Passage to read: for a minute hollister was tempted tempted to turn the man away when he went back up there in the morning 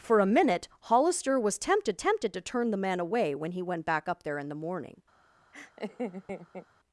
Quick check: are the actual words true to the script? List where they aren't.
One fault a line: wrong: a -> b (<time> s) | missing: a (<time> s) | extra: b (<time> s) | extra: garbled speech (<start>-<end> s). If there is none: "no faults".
no faults